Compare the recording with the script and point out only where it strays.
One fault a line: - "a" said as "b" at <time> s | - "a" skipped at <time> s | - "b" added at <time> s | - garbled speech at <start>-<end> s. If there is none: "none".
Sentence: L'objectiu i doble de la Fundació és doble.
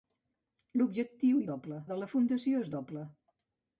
none